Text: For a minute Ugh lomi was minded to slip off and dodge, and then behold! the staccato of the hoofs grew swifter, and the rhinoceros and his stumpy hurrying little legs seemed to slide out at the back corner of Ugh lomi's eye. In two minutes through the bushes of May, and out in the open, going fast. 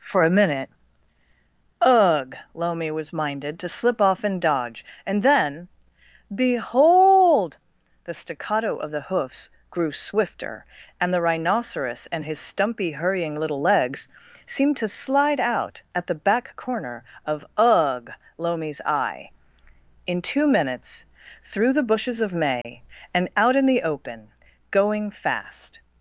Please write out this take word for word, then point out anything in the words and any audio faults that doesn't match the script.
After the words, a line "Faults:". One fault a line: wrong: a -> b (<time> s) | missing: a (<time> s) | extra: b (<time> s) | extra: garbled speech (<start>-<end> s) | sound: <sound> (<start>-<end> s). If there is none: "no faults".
For a minute Ugh lomi was minded to slip off and dodge, and then behold! the staccato of the hoofs grew swifter, and the rhinoceros and his stumpy hurrying little legs seemed to slide out at the back corner of Ugh lomi's eye. In two minutes through the bushes of May, and out in the open, going fast.
Faults:
sound: dropout (22.6-22.7 s)